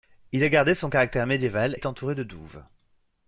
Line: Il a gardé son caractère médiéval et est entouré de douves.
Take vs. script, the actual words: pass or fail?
fail